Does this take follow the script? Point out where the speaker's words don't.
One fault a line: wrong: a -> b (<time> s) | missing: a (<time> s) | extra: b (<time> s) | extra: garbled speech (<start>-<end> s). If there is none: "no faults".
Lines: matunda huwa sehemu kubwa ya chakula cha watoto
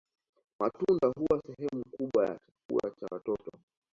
no faults